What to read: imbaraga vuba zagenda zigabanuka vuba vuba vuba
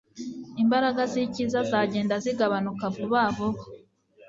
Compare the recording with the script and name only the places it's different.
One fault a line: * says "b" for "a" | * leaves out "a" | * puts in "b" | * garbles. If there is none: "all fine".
* says "z'icyiza" for "vuba"
* leaves out "vuba"